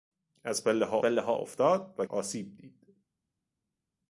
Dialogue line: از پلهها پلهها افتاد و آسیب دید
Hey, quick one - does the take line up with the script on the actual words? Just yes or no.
yes